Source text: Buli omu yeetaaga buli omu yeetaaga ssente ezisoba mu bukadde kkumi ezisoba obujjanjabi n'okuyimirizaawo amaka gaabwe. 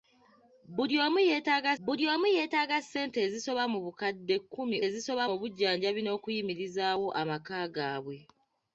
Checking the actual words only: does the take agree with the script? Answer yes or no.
yes